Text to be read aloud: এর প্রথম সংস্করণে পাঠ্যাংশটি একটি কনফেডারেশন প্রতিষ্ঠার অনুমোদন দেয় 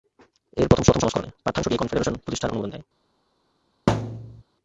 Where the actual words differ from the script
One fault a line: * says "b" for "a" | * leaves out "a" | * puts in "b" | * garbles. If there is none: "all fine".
* puts in "প্রথম"
* leaves out "একটি"